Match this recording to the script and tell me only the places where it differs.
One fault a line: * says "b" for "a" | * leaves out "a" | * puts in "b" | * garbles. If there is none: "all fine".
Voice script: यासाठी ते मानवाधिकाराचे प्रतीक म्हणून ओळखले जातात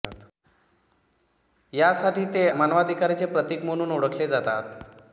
all fine